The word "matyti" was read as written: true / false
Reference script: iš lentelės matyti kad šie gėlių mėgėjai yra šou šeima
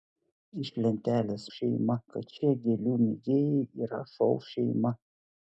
false